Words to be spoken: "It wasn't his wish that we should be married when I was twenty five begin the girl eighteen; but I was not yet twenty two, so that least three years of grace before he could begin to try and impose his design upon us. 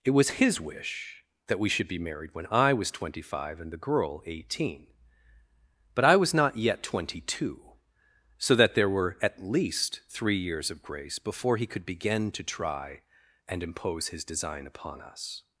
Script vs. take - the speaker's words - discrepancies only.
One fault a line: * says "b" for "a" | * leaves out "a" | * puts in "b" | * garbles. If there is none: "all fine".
* says "was" for "wasn't"
* says "and" for "begin"
* puts in "there were at"